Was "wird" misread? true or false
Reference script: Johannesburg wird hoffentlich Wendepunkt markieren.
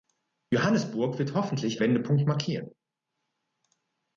false